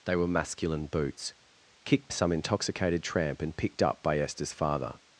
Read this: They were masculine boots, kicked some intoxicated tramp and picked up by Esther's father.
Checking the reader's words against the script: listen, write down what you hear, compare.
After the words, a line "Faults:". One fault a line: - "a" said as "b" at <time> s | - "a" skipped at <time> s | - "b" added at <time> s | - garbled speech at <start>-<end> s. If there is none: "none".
They were masculine boots, kicked some intoxicated tramp and picked up by Esther's father.
Faults:
none